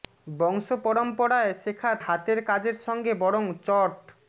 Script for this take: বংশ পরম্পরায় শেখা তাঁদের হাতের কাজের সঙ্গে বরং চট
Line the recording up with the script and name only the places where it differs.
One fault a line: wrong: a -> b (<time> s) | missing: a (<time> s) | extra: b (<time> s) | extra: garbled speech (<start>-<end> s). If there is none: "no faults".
missing: তাঁদের (1.9 s)